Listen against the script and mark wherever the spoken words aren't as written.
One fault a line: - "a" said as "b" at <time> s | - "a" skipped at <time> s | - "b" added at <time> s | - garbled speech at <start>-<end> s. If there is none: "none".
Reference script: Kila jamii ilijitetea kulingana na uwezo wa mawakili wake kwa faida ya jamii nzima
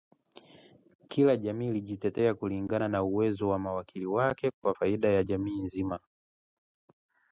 none